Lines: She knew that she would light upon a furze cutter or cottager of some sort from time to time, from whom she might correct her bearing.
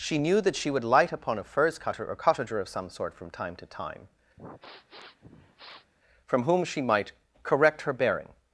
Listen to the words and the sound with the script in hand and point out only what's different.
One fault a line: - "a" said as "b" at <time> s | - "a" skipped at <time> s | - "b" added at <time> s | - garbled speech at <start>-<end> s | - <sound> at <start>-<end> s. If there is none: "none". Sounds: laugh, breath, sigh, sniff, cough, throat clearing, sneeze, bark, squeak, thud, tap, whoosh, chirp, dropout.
- sniff at 4.4-5.9 s